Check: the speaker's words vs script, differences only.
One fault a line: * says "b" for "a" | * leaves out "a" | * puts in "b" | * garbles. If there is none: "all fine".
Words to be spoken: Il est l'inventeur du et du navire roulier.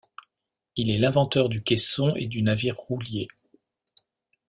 * puts in "caisson"